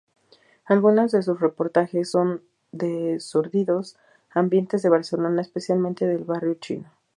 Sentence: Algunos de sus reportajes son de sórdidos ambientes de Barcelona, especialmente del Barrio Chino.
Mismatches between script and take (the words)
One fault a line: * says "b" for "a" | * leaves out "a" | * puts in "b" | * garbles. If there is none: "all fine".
all fine